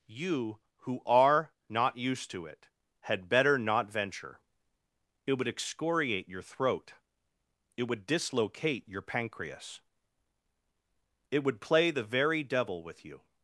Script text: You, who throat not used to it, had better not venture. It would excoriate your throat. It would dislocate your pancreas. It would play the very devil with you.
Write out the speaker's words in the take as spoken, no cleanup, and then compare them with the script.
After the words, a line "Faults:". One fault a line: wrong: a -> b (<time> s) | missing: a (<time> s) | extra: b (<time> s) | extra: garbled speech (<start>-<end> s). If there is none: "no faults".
You, who are not used to it, had better not venture. It would excoriate your throat. It would dislocate your pancreas. It would play the very devil with you.
Faults:
wrong: throat -> are (1.1 s)